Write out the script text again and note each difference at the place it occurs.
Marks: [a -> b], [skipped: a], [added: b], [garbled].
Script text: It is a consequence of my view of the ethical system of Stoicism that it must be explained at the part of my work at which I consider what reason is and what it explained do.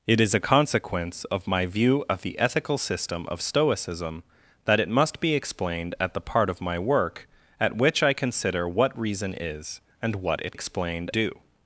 It is a consequence of my view of the ethical system of Stoicism that it must be explained at the part of my work at which I consider what reason is and what it explained do.